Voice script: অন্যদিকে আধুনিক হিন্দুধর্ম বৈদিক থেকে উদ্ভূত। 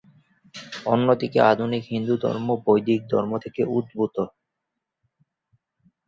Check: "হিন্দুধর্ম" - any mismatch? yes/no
no